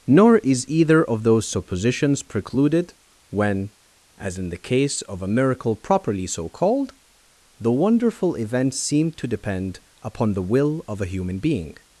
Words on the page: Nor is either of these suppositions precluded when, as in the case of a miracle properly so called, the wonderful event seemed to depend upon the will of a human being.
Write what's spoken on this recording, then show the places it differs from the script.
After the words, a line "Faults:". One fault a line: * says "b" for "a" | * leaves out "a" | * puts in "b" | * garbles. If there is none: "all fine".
Nor is either of those suppositions precluded when, as in the case of a miracle properly so called, the wonderful event seemed to depend upon the will of a human being.
Faults:
* says "those" for "these"